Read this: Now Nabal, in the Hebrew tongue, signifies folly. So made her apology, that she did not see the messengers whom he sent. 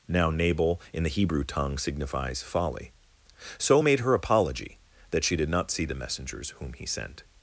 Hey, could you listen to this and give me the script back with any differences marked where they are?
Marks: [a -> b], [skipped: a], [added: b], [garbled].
Now Nabal, in the Hebrew tongue, signifies folly. So made her apology, that she did not see the messengers whom he sent.